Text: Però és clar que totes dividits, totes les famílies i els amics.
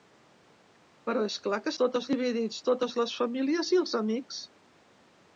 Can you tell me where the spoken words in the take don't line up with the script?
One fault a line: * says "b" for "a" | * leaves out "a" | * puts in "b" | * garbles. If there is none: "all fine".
all fine